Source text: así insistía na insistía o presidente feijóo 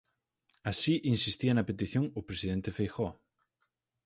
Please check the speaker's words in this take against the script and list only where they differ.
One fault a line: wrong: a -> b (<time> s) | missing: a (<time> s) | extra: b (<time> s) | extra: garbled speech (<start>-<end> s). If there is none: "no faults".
wrong: insistía -> petición (1.7 s)